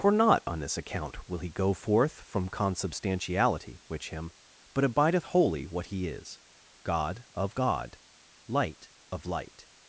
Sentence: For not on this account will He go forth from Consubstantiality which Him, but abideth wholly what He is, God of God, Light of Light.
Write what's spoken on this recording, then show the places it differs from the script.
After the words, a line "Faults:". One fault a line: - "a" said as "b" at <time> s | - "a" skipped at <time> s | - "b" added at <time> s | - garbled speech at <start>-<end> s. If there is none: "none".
For not on this account will He go forth from Consubstantiality which Him, but abideth wholly what He is, God of God, Light of Light.
Faults:
none